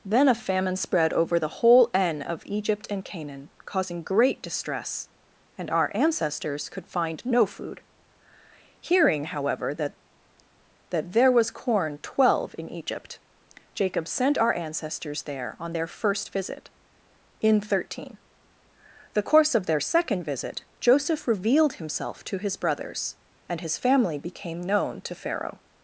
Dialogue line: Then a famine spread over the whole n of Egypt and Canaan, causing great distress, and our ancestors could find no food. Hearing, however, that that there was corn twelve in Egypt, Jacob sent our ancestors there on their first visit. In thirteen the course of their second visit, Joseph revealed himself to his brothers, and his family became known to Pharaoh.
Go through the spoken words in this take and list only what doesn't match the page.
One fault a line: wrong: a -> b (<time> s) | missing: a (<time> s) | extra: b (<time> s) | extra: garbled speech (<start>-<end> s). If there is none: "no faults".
no faults